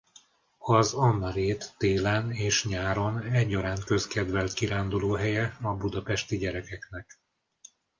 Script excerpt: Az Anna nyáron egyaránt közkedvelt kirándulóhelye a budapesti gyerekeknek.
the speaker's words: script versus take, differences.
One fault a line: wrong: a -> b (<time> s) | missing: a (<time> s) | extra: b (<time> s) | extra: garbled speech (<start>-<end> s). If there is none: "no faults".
extra: rét télen és (1.3 s)